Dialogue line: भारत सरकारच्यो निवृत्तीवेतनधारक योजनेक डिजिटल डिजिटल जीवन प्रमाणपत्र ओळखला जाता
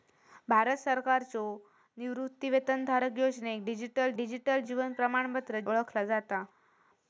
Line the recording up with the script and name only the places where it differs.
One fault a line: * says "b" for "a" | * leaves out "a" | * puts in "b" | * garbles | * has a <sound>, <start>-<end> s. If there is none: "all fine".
all fine